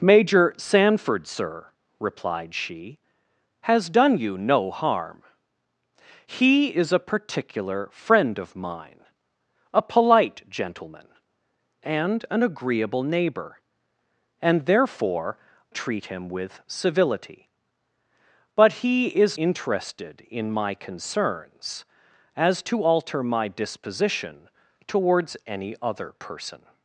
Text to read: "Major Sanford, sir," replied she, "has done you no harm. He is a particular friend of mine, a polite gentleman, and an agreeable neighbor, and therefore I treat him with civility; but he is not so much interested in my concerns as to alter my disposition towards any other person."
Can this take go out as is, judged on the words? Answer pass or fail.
fail